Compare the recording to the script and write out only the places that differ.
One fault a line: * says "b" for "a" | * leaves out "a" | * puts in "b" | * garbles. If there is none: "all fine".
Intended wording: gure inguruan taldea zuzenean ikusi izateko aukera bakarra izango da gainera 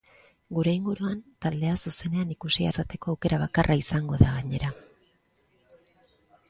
all fine